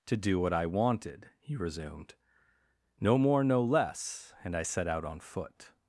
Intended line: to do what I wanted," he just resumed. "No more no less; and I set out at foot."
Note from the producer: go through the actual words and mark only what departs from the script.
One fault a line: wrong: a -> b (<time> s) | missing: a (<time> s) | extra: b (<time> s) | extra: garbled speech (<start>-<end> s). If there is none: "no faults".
missing: just (1.6 s)
wrong: at -> on (5.0 s)